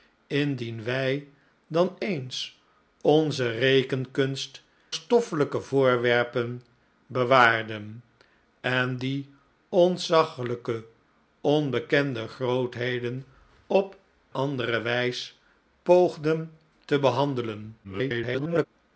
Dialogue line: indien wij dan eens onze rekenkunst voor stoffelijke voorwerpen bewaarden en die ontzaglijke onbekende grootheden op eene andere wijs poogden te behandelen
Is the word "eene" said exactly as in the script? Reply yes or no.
no